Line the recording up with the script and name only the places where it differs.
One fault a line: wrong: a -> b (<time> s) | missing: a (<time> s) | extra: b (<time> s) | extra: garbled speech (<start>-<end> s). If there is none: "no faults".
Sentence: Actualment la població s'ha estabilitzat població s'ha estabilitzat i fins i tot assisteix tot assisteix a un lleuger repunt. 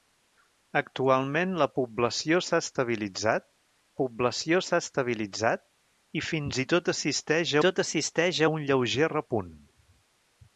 no faults